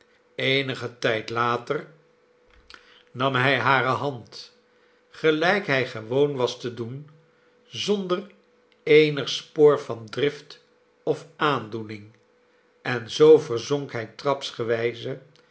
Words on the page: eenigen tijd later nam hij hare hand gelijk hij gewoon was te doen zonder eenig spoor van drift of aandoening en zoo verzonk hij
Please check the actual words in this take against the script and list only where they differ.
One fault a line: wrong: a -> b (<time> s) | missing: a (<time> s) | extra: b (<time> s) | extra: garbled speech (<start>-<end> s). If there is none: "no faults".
no faults